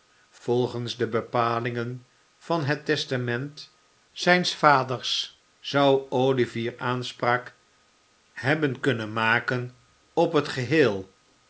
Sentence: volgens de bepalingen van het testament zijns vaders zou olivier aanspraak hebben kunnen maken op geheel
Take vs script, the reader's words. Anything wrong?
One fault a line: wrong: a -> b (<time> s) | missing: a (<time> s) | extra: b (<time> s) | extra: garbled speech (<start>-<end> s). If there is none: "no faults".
extra: het (10.3 s)